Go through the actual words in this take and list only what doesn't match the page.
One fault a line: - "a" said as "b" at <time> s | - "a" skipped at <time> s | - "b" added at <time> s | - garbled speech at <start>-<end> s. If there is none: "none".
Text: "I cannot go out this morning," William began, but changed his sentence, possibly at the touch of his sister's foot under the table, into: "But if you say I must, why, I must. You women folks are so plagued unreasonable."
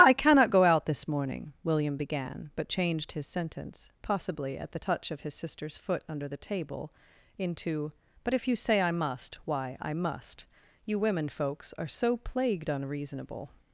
none